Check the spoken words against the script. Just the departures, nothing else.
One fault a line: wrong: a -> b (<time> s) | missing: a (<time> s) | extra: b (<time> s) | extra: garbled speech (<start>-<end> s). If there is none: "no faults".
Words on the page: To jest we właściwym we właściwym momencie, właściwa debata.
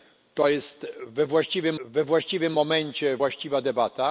no faults